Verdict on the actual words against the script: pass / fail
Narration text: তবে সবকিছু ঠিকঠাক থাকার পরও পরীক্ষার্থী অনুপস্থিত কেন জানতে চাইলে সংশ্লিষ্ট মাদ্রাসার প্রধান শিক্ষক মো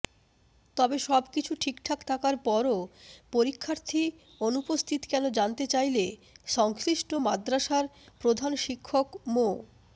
pass